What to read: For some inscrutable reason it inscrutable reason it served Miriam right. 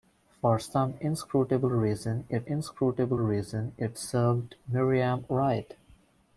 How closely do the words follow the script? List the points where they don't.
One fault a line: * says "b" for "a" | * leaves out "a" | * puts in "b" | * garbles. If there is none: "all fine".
all fine